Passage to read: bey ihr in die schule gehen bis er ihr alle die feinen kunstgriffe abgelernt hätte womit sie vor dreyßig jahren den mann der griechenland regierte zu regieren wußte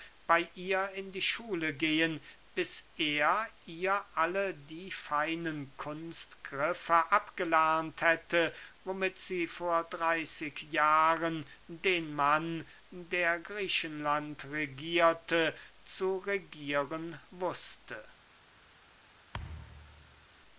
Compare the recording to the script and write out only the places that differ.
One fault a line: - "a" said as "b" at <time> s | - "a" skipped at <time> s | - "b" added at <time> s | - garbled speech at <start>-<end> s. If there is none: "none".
none